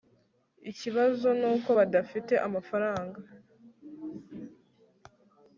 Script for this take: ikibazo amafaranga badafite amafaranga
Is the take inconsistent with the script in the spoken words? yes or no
yes